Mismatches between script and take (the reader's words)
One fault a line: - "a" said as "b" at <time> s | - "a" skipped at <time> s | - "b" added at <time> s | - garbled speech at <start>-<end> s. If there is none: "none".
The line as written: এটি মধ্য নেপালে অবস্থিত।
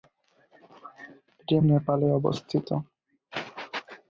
- "মধ্য" skipped at 1.6 s